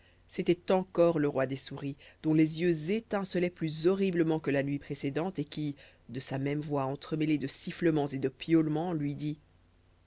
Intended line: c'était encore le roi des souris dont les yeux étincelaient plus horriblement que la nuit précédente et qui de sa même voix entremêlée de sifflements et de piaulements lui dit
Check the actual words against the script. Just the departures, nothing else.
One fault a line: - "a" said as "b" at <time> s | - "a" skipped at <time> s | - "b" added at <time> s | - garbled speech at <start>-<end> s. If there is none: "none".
none